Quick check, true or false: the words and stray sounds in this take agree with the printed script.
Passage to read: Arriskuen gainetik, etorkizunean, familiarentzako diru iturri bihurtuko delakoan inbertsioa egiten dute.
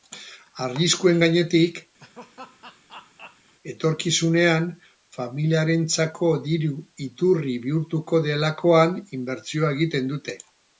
false